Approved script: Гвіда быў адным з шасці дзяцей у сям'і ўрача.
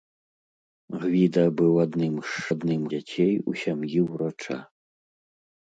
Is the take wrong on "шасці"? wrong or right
wrong